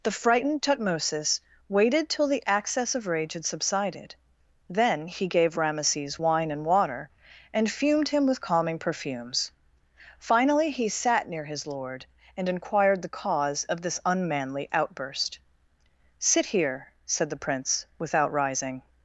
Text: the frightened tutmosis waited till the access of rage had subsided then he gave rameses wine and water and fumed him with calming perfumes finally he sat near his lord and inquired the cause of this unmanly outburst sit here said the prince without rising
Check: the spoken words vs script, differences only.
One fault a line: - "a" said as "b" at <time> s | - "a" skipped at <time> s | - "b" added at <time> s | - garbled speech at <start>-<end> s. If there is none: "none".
none